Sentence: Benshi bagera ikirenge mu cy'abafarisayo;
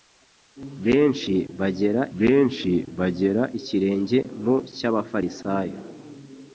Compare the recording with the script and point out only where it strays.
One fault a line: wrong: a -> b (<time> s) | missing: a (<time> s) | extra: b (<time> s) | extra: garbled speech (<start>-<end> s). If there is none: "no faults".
extra: benshi bagera (2.2 s)